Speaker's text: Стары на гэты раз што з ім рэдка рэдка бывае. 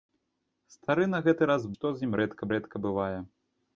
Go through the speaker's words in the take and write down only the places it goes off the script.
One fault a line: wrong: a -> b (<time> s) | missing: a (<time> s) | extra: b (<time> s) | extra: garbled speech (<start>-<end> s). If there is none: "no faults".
no faults